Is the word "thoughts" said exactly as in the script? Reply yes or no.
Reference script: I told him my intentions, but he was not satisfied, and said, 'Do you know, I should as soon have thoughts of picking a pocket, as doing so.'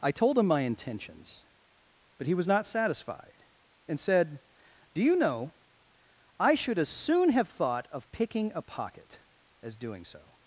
no